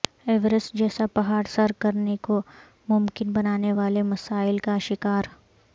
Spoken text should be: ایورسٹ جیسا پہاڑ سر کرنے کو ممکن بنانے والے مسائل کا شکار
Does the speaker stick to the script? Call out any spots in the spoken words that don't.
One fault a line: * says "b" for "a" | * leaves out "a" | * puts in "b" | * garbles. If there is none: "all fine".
all fine